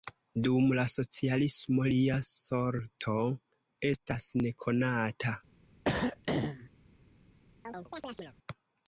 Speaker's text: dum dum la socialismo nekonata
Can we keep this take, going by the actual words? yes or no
no